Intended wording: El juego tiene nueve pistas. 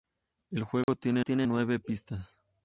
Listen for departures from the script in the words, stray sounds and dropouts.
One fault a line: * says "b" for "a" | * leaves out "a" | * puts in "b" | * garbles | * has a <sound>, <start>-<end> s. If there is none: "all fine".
* has a dropout, 0.8-0.9 s
* puts in "tiene"